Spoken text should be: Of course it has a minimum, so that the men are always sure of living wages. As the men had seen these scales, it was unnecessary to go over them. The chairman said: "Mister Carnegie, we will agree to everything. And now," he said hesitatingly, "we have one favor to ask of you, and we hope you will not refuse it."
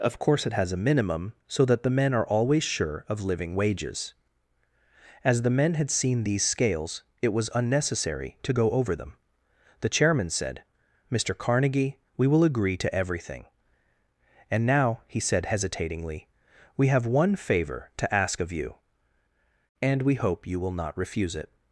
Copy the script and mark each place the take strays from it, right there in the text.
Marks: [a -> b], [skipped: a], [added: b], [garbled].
Of course it has a minimum, so that the men are always sure of living wages. As the men had seen these scales, it was unnecessary to go over them. The chairman said: "Mister Carnegie, we will agree to everything. And now," he said hesitatingly, "we have one favor to ask of you, and we hope you will not refuse it."